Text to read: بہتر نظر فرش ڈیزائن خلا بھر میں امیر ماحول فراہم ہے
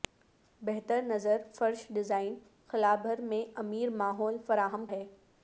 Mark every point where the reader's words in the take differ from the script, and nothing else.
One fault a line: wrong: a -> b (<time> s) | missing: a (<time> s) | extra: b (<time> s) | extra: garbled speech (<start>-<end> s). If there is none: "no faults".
no faults